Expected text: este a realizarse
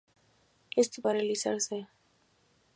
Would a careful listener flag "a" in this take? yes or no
no